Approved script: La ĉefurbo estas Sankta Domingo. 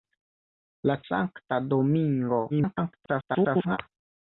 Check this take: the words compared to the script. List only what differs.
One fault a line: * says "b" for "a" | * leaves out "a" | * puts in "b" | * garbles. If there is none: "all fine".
* leaves out "ĉefurbo estas"
* garbles